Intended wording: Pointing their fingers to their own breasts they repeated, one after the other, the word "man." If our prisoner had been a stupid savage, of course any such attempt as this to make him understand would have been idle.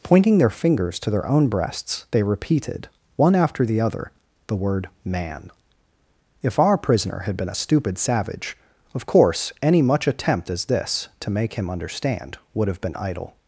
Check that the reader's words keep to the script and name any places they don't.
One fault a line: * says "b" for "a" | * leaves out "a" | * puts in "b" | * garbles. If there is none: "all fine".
* says "much" for "such"